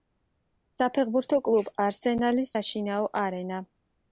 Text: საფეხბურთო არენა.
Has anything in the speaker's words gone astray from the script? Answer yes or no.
yes